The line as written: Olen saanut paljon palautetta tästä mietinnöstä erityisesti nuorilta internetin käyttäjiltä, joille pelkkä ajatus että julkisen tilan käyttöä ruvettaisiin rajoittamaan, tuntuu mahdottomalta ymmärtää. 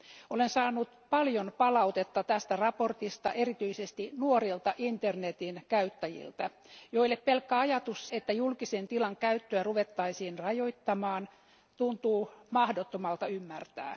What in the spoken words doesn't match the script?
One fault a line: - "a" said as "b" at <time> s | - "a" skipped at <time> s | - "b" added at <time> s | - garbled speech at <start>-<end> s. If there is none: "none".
none